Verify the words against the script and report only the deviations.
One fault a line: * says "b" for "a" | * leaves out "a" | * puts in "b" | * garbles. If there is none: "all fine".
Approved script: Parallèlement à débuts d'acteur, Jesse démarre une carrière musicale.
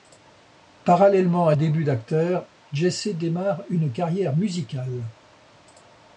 all fine